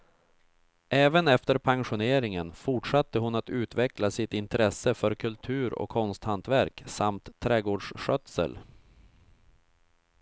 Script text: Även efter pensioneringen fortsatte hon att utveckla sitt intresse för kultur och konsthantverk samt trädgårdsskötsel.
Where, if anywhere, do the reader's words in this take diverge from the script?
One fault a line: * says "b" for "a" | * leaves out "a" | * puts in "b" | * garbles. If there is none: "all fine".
all fine